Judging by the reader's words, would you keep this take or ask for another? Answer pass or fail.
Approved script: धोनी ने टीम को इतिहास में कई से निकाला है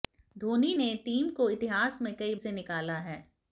pass